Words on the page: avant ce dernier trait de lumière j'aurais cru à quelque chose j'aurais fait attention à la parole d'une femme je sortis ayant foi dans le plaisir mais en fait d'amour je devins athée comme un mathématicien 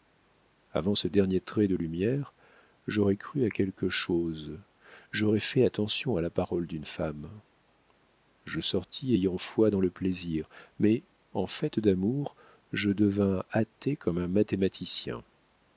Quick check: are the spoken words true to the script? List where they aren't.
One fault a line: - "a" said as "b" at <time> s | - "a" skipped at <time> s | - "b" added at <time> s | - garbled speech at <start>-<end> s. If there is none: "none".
none